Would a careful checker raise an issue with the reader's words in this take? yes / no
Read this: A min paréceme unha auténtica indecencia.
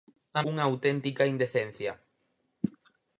yes